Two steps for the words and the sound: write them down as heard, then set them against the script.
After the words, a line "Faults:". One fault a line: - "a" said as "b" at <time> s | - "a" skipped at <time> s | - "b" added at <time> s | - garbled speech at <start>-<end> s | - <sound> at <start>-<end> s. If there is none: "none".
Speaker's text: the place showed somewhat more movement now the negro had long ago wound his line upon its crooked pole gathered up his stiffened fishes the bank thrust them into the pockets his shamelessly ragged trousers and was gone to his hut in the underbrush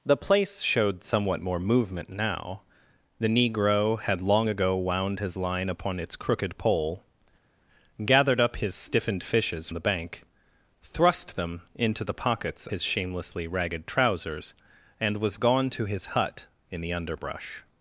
the place showed somewhat more movement now the negro had long ago wound his line upon its crooked pole gathered up his stiffened fishes the bank thrust them into the pockets his shamelessly ragged trousers and was gone to his hut in the underbrush
Faults:
none